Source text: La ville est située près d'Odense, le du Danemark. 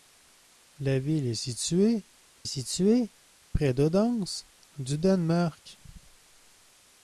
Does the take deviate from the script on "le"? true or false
true